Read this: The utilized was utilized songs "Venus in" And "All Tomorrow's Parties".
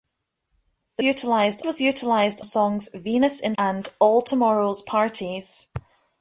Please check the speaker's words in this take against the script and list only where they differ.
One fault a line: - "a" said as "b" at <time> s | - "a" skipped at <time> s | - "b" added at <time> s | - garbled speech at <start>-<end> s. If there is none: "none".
none